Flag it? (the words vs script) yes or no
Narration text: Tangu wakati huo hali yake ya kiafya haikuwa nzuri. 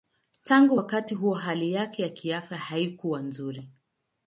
no